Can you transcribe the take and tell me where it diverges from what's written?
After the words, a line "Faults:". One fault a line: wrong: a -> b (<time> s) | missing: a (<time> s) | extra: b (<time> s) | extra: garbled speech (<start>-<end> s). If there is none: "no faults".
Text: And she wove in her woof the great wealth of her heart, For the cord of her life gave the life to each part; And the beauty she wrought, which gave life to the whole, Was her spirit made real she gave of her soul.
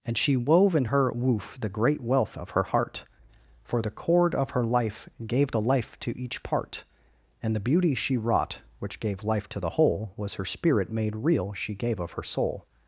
And she wove in her woof the great wealth of her heart, For the cord of her life gave the life to each part; And the beauty she wrought, which gave life to the whole, Was her spirit made real she gave of her soul.
Faults:
no faults